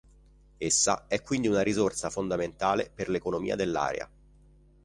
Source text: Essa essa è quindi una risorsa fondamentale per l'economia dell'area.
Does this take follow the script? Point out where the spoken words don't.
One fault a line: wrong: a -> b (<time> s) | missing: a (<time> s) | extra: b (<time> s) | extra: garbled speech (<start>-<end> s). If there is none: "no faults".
missing: essa (1.1 s)